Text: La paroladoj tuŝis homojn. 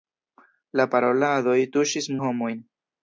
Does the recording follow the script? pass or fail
pass